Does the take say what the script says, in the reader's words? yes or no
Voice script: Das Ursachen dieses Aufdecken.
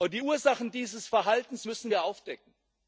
no